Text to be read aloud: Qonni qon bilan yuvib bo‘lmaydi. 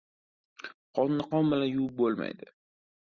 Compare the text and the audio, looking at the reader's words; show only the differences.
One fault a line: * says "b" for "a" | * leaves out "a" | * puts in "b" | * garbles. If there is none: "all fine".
all fine